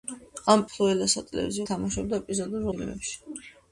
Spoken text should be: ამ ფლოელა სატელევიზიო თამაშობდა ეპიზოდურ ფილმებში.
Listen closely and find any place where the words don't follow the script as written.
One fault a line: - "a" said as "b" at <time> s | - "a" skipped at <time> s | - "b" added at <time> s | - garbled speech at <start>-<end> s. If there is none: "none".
none